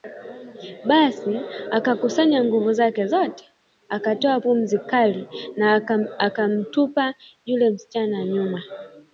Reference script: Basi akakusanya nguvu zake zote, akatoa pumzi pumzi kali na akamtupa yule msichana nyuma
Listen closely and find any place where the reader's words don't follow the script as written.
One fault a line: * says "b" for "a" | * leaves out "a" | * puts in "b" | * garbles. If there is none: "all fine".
* leaves out "pumzi"